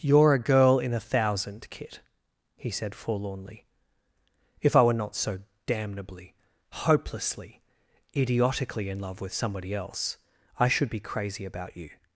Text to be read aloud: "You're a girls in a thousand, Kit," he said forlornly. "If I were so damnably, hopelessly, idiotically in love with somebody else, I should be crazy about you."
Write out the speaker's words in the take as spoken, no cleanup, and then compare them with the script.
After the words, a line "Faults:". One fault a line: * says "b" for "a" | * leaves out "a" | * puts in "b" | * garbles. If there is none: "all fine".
"You're a girl in a thousand, Kit," he said forlornly. "If I were not so damnably, hopelessly, idiotically in love with somebody else, I should be crazy about you."
Faults:
* says "girl" for "girls"
* puts in "not"